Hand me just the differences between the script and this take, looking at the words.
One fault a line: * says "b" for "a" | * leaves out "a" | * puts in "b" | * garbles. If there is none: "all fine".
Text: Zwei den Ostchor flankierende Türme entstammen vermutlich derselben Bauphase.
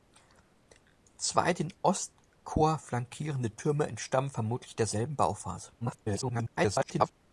* garbles